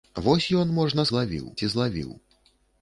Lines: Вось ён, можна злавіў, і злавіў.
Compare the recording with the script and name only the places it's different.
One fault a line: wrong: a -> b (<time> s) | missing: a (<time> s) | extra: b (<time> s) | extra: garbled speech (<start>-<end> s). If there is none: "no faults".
no faults